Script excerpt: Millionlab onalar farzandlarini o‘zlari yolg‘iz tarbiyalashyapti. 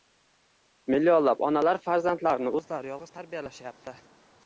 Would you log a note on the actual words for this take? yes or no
no